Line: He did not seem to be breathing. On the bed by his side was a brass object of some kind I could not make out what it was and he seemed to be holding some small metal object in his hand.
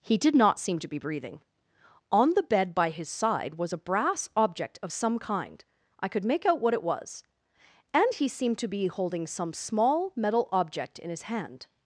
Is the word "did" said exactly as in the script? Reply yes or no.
yes